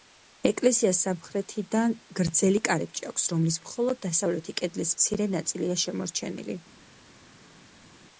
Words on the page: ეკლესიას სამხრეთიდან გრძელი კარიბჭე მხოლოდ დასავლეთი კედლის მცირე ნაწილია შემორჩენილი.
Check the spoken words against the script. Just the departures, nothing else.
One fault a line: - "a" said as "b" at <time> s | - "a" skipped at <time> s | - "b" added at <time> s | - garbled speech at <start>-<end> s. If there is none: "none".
- "აქვს რომლის" added at 3.1 s